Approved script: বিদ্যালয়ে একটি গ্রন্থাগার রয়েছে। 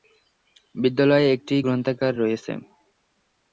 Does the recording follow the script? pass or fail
pass